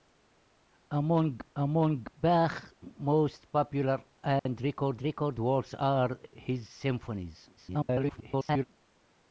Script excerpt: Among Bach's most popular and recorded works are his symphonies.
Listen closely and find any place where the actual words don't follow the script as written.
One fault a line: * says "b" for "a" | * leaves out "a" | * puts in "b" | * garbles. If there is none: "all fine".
* puts in "among"
* puts in "recorded"
* garbles